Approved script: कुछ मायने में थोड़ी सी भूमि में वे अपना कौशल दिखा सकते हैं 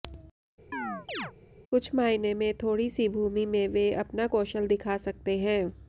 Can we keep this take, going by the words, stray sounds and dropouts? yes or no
no